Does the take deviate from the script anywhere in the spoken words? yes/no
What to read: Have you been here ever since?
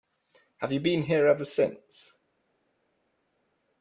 no